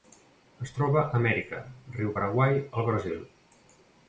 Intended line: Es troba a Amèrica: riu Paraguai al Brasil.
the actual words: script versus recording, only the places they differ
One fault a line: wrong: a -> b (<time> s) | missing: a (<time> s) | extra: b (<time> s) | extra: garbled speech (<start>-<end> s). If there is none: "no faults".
no faults